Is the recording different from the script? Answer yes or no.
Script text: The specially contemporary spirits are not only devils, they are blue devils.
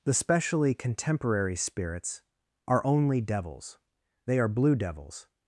yes